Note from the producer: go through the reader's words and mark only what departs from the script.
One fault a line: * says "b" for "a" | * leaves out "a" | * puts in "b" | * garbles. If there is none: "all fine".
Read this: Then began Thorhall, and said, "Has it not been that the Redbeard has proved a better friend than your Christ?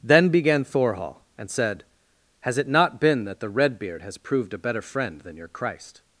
all fine